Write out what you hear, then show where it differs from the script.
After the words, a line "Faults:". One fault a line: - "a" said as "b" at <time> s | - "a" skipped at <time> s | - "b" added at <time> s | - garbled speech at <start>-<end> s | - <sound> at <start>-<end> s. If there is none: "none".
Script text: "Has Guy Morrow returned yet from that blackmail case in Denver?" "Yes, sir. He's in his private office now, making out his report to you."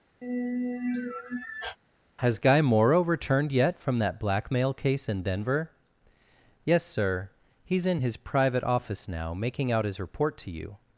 "Has Guy Morrow returned yet from that blackmail case in Denver?" "Yes, sir. He's in his private office now, making out his report to you."
Faults:
- sigh at 0.2-1.8 s